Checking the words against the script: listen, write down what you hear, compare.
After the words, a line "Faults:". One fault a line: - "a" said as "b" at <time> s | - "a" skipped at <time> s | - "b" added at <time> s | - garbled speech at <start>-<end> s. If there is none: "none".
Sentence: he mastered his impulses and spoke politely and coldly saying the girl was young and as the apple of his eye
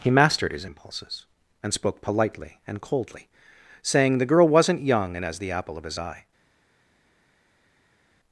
he mastered his impulses and spoke politely and coldly saying the girl wasn't young and as the apple of his eye
Faults:
- "was" said as "wasn't" at 4.5 s